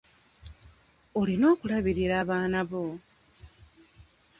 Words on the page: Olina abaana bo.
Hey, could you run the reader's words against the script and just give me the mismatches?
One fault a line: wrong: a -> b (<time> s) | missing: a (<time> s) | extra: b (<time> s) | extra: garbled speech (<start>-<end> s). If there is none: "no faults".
extra: okulabirira (1.5 s)